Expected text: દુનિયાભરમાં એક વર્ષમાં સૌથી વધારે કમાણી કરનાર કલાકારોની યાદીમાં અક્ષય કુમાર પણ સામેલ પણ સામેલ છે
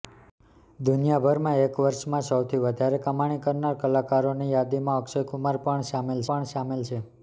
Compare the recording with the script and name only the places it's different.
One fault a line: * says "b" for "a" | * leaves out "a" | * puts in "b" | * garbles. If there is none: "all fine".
all fine